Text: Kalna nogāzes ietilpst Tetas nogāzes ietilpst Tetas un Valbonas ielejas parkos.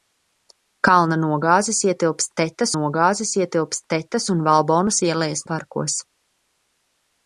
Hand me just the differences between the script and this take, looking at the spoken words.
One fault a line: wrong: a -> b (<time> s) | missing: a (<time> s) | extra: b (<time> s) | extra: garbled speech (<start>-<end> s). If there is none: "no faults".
no faults